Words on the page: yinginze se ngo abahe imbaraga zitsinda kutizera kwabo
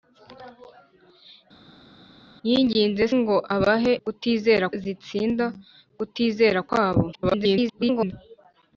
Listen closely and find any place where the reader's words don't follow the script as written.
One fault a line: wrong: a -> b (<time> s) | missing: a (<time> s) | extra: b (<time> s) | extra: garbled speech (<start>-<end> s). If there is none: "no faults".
missing: se (3.0 s)
wrong: imbaraga -> kutizera (4.0 s)
extra: garbled speech (7.1-8.1 s)